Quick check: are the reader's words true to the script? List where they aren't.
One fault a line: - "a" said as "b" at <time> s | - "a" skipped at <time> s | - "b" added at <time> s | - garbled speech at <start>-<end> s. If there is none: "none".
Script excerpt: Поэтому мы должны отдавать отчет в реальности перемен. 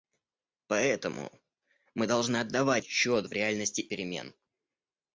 none